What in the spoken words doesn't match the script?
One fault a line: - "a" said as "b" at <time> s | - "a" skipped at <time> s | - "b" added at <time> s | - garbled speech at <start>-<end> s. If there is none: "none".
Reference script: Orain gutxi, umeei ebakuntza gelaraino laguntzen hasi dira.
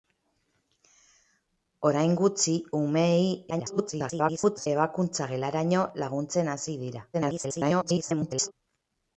- garbled speech at 3.5-4.7 s
- garbled speech at 7.1-8.5 s